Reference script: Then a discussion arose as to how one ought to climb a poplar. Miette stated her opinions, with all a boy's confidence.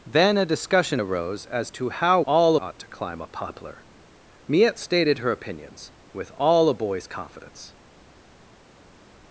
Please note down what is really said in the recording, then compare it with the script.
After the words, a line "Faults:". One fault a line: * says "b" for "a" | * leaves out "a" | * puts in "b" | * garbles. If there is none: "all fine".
Then a discussion arose as to how all ought to climb a poplar. Miette stated her opinions, with all a boy's confidence.
Faults:
* says "all" for "one"